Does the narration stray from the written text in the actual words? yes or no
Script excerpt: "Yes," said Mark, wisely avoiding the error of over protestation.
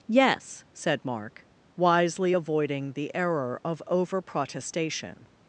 no